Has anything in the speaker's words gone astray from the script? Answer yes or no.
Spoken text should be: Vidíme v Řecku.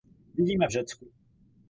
no